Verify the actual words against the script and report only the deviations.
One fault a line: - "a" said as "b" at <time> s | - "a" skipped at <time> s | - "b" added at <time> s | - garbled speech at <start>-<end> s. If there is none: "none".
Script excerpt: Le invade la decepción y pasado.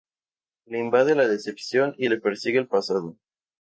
- "le persigue el" added at 2.1 s